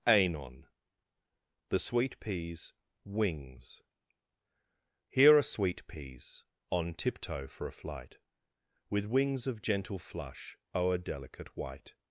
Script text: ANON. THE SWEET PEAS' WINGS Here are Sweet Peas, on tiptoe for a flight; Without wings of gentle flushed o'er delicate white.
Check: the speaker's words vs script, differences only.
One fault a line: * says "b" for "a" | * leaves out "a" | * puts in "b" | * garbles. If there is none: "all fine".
* says "With" for "Without"
* says "flush" for "flushed"